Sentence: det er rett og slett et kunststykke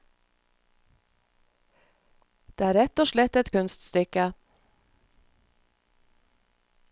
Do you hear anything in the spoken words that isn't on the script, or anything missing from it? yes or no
no